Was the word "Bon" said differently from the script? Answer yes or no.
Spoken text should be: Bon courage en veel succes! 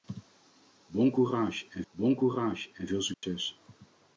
no